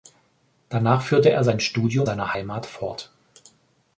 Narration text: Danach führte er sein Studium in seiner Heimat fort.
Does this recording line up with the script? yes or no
no